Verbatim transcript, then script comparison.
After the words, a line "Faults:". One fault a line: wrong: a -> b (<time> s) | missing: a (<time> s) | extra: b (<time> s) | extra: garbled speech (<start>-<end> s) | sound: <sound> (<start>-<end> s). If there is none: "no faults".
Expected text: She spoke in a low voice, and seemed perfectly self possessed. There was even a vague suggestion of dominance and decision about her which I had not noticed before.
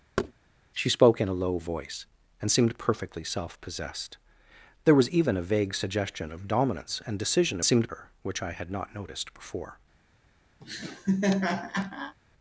She spoke in a low voice, and seemed perfectly self possessed. There was even a vague suggestion of dominance and decision seemed her which I had not noticed before.
Faults:
sound: thud (0.2-0.3 s)
wrong: about -> seemed (7.6 s)
sound: laugh (10.6-12.2 s)